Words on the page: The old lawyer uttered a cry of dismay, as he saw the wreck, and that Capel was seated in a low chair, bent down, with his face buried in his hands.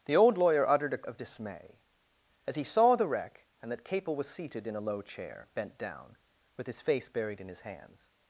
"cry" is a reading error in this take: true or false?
true